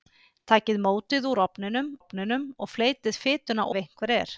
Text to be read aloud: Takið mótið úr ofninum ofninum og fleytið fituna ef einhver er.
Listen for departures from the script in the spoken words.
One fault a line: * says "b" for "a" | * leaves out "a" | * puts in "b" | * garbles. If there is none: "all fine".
all fine